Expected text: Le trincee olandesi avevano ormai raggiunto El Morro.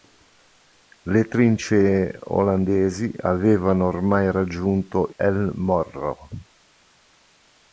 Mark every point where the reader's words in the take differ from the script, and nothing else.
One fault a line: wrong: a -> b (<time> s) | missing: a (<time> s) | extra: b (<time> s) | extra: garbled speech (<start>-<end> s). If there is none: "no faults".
no faults